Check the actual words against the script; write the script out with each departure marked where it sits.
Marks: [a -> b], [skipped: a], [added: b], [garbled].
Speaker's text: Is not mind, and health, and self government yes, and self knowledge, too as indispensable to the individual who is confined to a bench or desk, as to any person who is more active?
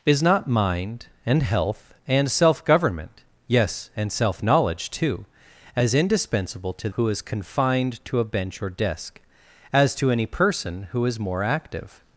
Is not mind, and health, and self government yes, and self knowledge, too as indispensable to [skipped: the individual] who is confined to a bench or desk, as to any person who is more active?